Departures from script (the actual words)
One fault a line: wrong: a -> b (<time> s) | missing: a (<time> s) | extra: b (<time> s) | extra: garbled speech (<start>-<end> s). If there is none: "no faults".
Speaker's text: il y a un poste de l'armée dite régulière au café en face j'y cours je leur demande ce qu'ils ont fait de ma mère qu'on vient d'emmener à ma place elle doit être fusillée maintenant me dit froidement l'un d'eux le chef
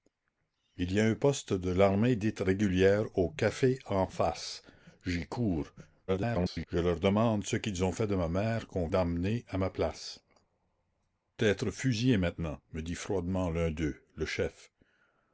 extra: garbled speech (6.1-6.7 s)
missing: vient (8.9 s)
missing: elle doit (10.2 s)